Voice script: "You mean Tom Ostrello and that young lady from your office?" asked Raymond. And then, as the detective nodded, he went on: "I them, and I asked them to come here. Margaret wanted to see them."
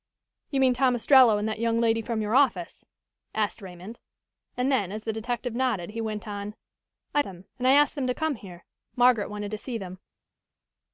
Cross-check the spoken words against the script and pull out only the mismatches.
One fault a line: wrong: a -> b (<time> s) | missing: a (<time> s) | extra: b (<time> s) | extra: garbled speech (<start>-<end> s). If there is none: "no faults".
no faults